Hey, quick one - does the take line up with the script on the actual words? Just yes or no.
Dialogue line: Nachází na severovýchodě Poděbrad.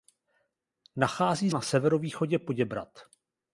yes